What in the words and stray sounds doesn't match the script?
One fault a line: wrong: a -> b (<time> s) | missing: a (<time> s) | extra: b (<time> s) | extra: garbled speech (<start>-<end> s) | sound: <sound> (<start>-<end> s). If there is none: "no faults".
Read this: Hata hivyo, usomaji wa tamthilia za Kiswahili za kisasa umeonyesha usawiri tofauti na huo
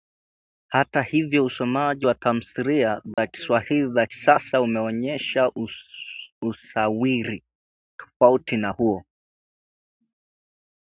sound: dropout (3.1-3.2 s)